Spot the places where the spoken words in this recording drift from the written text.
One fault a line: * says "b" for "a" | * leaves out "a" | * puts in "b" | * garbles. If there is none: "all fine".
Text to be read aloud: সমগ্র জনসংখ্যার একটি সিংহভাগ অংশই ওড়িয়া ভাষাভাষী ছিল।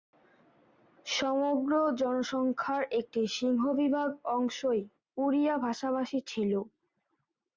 all fine